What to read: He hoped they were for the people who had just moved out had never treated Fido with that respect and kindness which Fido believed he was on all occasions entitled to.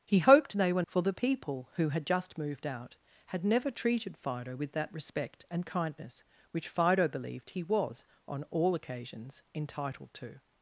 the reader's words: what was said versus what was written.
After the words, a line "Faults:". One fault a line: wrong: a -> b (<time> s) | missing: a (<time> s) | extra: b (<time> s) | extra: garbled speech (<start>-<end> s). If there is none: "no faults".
He hoped they were for the people who had just moved out had never treated Fido with that respect and kindness which Fido believed he was on all occasions entitled to.
Faults:
no faults